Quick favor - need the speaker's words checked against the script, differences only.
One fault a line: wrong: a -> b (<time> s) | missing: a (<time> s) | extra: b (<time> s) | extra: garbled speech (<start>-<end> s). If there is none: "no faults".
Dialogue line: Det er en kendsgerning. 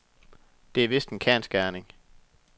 extra: vist (0.9 s)